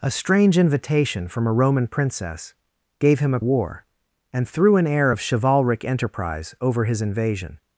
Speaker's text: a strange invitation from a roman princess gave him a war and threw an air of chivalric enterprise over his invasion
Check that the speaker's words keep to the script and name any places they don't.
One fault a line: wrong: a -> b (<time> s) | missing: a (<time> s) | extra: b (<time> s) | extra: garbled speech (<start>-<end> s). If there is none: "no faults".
no faults